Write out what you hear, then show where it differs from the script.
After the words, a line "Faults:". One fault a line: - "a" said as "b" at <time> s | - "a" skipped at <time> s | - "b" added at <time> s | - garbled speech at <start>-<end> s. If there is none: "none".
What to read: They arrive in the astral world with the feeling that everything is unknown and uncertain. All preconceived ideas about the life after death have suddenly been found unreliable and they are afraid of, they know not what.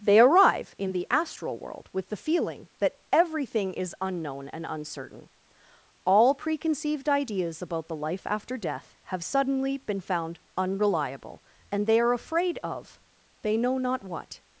They arrive in the astral world with the feeling that everything is unknown and uncertain. All preconceived ideas about the life after death have suddenly been found unreliable and they are afraid of, they know not what.
Faults:
none